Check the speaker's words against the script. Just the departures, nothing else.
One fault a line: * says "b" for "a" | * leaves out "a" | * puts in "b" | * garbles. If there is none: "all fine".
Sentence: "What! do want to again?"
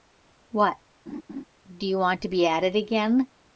* puts in "you"
* puts in "be at it"